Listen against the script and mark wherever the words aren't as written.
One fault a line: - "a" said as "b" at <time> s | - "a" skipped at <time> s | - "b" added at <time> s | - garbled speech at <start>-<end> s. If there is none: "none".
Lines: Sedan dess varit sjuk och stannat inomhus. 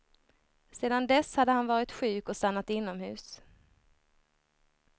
- "hade han" added at 1.4 s